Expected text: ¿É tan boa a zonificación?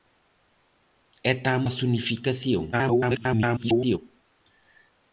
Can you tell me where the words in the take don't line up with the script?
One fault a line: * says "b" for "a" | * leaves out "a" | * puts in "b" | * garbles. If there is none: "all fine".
* leaves out "boa"
* garbles